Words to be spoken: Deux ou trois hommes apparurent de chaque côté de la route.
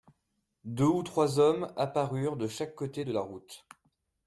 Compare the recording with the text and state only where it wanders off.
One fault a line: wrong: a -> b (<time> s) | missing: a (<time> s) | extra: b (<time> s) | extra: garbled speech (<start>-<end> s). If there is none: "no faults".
no faults